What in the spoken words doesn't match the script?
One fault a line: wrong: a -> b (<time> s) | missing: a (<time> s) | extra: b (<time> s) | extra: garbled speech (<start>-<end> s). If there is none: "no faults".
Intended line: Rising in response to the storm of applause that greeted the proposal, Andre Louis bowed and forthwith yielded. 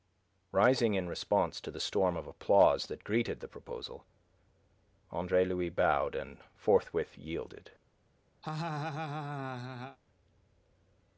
no faults